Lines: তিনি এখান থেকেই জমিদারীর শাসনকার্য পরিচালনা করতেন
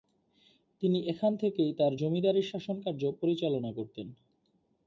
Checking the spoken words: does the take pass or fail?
fail